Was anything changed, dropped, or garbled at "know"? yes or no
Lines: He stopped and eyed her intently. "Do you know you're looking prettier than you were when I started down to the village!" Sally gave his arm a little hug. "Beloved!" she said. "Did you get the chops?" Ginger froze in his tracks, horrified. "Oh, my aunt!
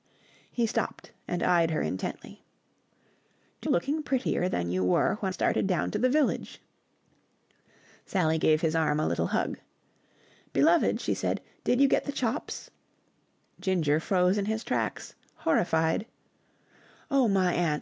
yes